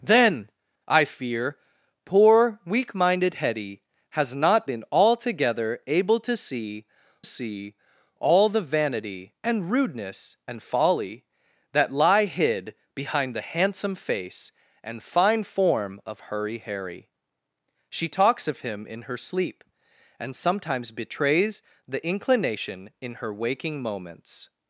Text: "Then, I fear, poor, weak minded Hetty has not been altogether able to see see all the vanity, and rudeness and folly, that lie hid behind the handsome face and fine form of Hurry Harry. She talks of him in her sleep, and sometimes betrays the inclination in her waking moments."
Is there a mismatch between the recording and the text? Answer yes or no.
no